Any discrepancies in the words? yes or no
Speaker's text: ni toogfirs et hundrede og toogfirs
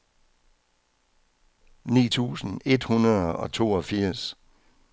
yes